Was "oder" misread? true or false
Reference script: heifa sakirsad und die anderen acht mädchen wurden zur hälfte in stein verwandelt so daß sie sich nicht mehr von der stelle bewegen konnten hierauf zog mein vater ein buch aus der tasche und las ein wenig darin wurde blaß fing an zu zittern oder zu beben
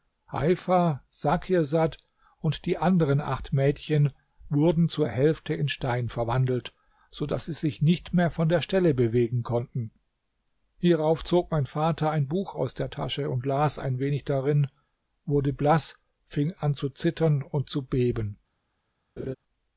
true